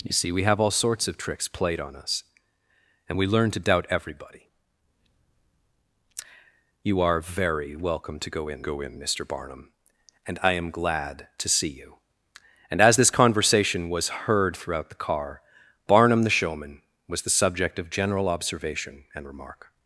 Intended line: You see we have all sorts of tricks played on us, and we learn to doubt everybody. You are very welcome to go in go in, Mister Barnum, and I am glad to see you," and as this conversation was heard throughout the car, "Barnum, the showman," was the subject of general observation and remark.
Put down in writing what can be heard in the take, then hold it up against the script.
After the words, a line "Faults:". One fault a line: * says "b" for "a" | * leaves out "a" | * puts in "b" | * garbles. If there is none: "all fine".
You see we have all sorts of tricks played on us, and we learn to doubt everybody. You are very welcome to go in go in, Mister Barnum, and I am glad to see you," and as this conversation was heard throughout the car, "Barnum, the showman," was the subject of general observation and remark.
Faults:
all fine